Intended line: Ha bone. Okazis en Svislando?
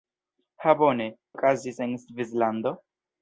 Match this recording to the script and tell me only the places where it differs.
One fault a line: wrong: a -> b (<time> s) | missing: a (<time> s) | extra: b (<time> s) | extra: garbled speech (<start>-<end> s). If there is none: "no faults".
no faults